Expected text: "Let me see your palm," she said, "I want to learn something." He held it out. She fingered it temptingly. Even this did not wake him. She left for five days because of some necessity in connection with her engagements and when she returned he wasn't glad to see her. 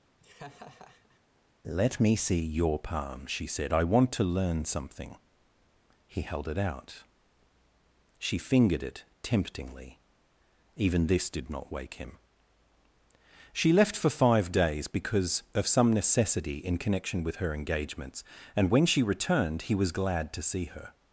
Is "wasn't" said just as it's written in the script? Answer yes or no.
no